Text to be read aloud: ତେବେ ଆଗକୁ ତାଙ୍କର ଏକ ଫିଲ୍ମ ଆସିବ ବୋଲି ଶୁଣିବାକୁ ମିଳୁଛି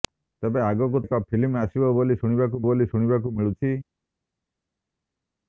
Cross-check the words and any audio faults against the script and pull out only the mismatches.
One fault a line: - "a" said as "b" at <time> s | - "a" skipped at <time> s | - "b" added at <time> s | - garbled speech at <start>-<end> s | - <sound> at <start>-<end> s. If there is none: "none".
- "ତାଙ୍କର" skipped at 1.0 s
- "ବୋଲି ଶୁଣିବାକୁ" added at 2.6 s